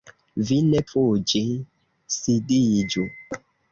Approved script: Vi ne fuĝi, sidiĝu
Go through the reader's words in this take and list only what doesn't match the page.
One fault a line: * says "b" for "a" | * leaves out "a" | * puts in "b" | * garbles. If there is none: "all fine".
all fine